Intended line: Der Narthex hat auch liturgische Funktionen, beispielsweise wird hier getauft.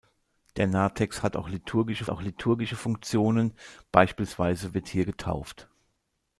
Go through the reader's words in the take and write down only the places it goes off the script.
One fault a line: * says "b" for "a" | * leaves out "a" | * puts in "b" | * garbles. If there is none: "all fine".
* puts in "auch liturgische"